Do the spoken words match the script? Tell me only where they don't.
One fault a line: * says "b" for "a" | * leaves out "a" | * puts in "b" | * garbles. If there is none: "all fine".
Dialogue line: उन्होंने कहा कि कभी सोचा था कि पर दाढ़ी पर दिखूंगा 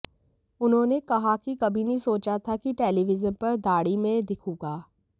* puts in "नहीं"
* puts in "टेलीविजन"
* says "में" for "पर"